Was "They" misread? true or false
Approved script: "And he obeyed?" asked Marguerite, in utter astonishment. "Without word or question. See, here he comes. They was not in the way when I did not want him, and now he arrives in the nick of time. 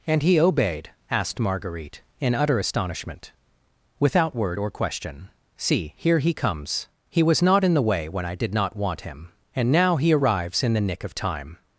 true